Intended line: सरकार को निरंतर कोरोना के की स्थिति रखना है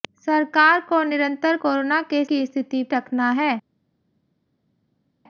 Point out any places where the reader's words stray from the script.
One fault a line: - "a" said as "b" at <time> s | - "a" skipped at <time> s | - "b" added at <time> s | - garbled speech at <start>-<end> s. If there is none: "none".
none